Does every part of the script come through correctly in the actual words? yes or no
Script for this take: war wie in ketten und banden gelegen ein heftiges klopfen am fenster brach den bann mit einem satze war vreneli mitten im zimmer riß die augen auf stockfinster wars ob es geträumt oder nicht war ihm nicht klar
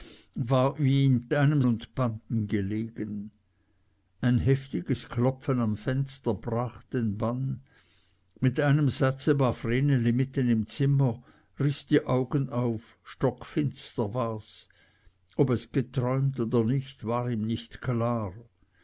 no